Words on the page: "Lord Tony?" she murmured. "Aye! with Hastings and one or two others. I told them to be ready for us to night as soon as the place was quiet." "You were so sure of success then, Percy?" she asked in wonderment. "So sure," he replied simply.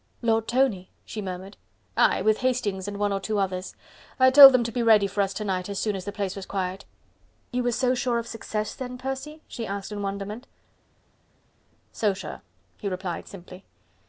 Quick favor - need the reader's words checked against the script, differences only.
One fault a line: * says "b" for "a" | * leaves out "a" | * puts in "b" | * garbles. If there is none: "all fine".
all fine